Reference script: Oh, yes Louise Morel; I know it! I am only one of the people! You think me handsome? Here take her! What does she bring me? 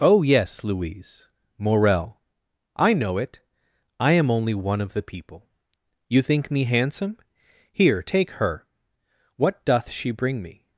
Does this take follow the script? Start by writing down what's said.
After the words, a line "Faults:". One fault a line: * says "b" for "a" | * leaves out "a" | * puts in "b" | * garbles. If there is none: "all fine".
Oh, yes Louise Morel; I know it! I am only one of the people! You think me handsome? Here take her! What doth she bring me?
Faults:
* says "doth" for "does"